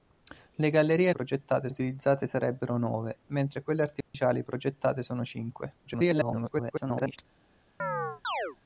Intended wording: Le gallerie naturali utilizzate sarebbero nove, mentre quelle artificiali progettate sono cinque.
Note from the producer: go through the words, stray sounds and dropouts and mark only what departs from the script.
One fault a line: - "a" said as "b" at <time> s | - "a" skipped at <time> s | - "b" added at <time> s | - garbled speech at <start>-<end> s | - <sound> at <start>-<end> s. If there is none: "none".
- "naturali" said as "progettate" at 1.1 s
- dropout at 4.0-4.1 s
- garbled speech at 5.9-7.2 s
- chirp at 7.8-8.6 s